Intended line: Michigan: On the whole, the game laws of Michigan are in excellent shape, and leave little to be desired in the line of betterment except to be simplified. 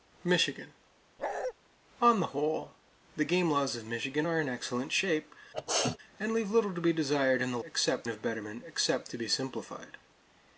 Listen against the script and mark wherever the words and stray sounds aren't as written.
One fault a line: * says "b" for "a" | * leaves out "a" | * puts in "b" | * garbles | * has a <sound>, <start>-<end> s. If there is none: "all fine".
* has a bark, 1.2-1.5 s
* has a sneeze, 5.5-6.0 s
* says "except" for "line"